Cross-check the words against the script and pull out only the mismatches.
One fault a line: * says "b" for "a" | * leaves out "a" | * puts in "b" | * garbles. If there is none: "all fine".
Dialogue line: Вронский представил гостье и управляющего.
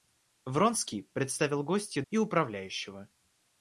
all fine